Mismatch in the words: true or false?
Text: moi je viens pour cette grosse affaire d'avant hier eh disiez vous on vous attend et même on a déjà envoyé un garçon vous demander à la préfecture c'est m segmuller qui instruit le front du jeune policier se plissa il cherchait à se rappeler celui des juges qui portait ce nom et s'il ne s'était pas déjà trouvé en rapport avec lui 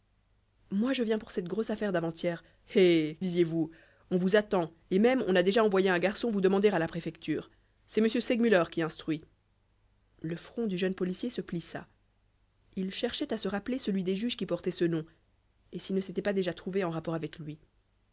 false